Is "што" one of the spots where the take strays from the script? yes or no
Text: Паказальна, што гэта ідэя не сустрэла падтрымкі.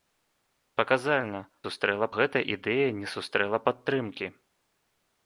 yes